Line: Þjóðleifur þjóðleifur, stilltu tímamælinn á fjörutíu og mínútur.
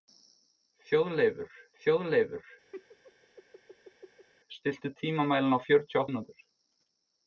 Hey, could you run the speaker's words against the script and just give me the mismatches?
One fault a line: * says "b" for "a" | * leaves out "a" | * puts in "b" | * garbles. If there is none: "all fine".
all fine